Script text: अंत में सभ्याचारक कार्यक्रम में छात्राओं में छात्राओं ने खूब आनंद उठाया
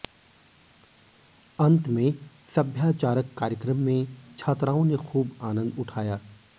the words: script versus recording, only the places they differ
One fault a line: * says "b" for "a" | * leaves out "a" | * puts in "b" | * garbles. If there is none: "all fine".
* leaves out "में छात्राओं"